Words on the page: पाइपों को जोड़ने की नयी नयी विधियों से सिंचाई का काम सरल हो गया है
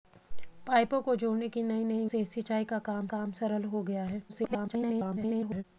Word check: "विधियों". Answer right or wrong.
wrong